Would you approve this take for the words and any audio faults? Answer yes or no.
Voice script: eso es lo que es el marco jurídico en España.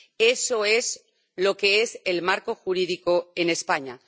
yes